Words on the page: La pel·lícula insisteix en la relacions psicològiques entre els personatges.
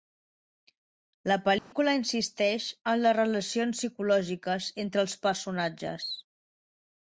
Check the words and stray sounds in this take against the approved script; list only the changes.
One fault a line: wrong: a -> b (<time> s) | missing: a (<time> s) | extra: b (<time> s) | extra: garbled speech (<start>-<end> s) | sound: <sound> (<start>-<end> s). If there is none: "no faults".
sound: dropout (1.6-1.7 s)
wrong: la -> les (3.0 s)